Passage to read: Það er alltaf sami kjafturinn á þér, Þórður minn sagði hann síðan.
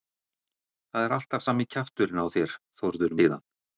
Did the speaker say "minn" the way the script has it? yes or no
no